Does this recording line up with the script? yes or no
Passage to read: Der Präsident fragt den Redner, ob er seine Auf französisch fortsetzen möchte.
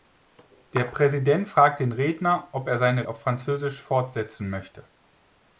yes